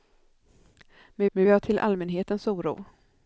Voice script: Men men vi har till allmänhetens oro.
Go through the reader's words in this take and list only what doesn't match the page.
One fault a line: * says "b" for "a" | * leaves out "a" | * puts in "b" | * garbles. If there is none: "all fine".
all fine